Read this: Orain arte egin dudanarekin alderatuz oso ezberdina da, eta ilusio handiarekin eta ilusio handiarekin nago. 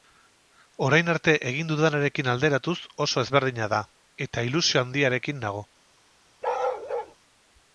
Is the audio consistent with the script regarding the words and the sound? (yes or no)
no